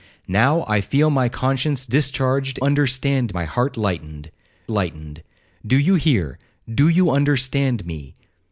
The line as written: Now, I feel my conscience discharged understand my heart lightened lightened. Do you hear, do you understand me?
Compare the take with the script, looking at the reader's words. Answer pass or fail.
pass